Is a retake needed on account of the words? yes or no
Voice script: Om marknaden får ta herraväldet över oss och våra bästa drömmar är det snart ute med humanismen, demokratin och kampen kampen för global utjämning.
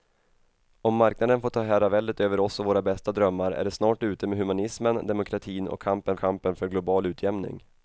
no